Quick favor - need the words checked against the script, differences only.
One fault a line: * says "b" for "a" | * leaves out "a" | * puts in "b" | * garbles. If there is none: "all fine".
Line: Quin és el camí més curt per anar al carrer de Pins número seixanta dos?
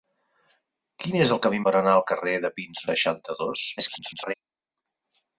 * leaves out "més curt"
* leaves out "número"
* garbles